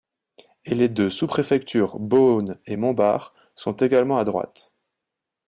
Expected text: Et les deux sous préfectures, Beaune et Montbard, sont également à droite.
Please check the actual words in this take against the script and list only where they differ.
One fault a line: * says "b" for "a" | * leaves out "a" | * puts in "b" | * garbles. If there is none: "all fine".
all fine